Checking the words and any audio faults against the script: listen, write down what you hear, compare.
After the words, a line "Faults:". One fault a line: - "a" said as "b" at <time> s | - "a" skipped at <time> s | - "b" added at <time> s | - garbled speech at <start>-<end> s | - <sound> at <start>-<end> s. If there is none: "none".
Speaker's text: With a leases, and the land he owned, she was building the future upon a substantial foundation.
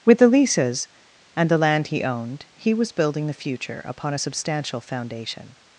With the leases, and the land he owned, he was building the future upon a substantial foundation.
Faults:
- "a" said as "the" at 0.2 s
- "she" said as "he" at 2.5 s